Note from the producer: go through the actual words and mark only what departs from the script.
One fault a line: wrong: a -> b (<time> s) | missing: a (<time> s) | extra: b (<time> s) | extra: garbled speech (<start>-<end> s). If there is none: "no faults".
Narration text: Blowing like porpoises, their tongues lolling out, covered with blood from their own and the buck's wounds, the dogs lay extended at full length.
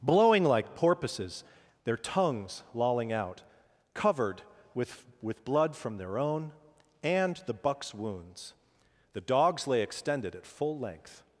extra: with (5.2 s)